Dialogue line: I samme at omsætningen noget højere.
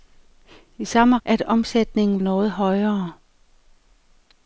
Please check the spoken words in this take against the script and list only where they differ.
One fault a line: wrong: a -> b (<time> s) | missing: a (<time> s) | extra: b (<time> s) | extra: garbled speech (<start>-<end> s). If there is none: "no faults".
no faults